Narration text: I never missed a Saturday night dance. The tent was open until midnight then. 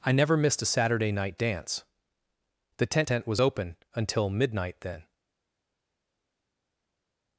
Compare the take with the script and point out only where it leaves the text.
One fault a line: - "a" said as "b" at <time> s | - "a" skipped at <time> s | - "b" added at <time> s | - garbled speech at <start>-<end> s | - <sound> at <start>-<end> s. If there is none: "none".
- "tent" added at 3.1 s